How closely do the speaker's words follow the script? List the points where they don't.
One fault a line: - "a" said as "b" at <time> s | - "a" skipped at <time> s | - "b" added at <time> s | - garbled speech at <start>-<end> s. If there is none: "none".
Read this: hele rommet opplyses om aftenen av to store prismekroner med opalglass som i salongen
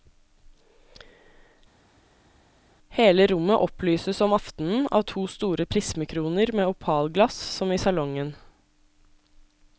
none